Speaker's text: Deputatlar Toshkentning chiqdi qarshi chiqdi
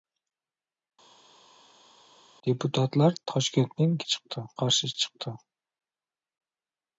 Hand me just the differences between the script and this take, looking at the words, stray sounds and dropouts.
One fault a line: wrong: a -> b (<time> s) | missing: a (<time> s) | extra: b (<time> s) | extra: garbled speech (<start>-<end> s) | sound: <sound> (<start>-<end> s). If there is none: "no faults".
no faults